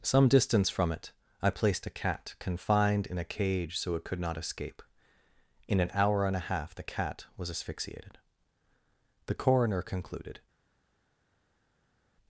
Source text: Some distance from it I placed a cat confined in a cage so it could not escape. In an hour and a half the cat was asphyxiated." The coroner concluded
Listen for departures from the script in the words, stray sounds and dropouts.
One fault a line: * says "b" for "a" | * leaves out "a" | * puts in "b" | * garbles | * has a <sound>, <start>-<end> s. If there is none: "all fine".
all fine